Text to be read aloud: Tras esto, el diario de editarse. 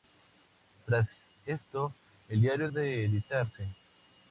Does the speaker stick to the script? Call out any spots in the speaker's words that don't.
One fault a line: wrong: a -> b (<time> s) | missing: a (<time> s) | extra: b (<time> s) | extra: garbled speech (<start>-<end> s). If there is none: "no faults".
no faults